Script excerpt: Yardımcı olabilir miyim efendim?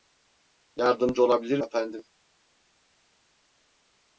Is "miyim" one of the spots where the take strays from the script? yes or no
yes